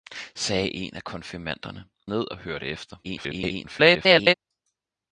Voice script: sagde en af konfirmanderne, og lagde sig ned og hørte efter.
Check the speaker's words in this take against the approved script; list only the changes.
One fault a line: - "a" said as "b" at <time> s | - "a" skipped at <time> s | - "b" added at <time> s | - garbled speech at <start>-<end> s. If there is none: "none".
- "og lagde sig" skipped at 1.9 s
- garbled speech at 3.0-4.3 s